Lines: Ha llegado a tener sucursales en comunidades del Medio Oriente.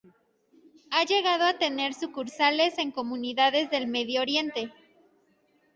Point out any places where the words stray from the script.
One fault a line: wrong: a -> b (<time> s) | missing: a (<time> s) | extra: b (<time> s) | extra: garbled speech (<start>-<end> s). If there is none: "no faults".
no faults